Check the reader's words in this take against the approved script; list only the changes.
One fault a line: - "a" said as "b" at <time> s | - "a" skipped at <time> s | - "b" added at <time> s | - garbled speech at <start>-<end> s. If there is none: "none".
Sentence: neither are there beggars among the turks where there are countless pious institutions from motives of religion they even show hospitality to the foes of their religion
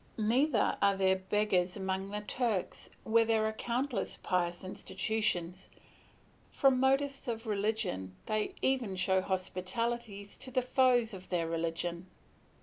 none